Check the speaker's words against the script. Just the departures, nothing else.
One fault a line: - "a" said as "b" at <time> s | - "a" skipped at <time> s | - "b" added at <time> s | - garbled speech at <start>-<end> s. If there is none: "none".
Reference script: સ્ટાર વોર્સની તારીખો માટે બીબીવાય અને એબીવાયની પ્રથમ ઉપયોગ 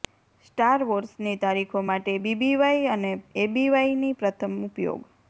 none